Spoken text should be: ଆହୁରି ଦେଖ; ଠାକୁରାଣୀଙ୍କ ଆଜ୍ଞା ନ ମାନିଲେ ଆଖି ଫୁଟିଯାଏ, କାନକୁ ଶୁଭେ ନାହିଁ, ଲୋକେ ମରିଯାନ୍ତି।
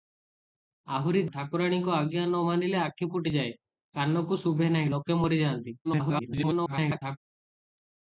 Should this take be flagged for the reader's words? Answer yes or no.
yes